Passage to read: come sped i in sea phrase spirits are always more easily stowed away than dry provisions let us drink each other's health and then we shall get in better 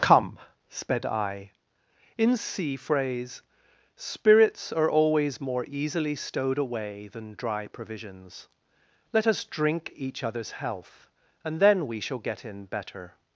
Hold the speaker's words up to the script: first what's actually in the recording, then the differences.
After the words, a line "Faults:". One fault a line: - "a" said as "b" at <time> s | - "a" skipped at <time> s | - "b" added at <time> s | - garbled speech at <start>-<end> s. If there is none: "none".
come sped i in sea phrase spirits are always more easily stowed away than dry provisions let us drink each other's health and then we shall get in better
Faults:
none